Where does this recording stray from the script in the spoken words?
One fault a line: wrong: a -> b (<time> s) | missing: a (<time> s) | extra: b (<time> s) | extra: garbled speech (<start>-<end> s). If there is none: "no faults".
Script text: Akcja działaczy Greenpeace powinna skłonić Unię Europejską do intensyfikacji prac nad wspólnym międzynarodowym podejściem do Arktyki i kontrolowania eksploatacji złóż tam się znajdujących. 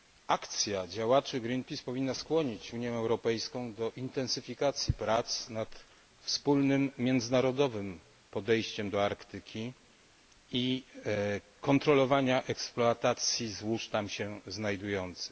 no faults